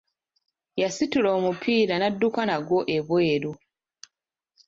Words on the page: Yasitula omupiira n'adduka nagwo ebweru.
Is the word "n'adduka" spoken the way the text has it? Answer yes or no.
yes